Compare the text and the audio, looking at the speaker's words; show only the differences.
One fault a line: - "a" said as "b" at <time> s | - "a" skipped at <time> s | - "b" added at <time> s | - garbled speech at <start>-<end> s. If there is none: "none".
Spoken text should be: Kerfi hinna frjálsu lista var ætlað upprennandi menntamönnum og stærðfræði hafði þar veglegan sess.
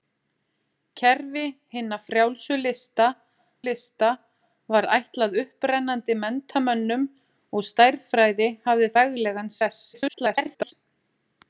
- "lista" added at 3.6 s
- "þar" skipped at 8.9 s
- garbled speech at 9.9-10.7 s